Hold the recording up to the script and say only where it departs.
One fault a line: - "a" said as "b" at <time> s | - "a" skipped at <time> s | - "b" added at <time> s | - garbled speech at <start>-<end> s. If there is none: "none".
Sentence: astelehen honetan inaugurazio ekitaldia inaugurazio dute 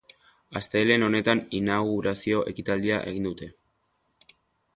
- "inaugurazio" said as "egin" at 3.1 s